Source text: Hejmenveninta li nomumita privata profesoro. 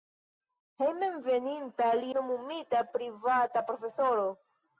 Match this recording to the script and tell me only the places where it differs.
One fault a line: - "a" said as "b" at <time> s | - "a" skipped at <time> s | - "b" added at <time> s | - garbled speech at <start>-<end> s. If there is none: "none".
none